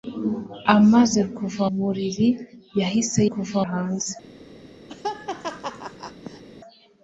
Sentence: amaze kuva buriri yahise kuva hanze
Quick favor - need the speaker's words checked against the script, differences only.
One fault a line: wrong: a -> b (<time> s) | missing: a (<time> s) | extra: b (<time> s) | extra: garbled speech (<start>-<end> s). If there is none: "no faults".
no faults